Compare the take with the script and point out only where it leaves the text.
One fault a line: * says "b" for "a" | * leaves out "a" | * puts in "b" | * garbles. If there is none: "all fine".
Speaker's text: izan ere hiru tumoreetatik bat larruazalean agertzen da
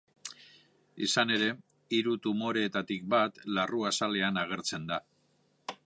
all fine